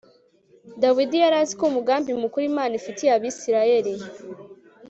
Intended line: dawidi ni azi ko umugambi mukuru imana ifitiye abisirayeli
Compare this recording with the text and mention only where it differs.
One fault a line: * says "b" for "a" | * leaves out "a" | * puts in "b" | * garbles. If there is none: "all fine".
* says "yari" for "ni"